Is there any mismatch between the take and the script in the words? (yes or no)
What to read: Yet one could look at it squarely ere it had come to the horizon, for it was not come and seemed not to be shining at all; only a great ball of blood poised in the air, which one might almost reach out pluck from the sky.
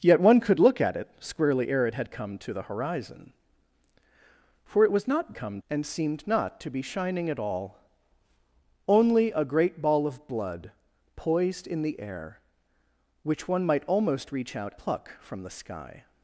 no